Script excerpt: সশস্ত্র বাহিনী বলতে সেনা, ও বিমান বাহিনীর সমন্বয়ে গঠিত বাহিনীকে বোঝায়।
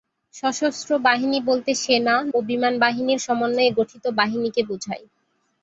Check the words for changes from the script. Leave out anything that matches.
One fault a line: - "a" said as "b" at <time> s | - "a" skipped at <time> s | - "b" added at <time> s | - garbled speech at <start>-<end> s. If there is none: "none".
none